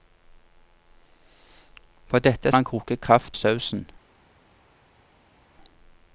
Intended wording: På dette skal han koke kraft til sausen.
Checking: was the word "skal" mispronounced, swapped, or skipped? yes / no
yes